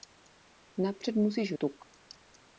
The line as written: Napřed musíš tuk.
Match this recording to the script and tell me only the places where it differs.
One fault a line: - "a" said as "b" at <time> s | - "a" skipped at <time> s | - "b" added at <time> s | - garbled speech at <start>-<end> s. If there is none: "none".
none